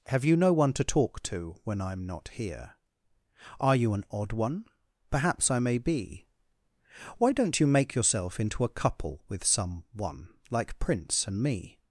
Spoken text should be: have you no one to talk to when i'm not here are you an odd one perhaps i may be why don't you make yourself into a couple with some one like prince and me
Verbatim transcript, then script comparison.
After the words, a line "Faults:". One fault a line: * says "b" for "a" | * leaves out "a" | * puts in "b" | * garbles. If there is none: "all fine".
have you no one to talk to when i'm not here are you an odd one perhaps i may be why don't you make yourself into a couple with some one like prince and me
Faults:
all fine